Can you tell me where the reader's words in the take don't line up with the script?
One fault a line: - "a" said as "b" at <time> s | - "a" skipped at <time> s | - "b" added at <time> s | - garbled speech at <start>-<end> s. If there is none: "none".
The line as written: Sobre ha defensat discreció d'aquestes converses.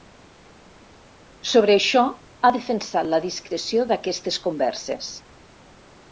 - "això" added at 1.8 s
- "la" added at 3.1 s